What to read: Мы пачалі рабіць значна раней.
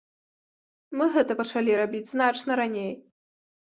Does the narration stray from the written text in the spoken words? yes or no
yes